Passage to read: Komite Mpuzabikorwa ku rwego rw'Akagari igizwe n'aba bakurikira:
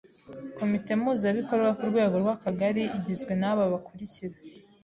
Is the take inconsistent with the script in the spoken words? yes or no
no